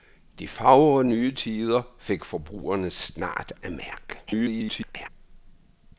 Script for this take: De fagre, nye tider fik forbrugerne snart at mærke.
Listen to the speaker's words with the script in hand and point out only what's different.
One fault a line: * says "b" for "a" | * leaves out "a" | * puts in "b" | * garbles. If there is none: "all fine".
* garbles